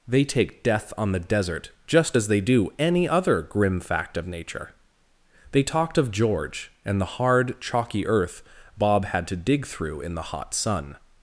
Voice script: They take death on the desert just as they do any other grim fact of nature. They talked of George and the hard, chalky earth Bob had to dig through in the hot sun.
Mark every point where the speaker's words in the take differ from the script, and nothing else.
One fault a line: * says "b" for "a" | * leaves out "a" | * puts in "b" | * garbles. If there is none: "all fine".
all fine